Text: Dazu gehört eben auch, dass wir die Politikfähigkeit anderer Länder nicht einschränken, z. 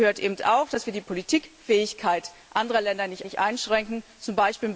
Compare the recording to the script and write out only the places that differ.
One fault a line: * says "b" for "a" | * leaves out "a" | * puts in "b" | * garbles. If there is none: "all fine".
* puts in "nicht"